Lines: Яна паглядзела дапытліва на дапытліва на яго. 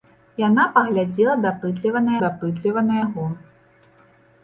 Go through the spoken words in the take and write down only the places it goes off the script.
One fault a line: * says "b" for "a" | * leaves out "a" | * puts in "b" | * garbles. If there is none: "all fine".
all fine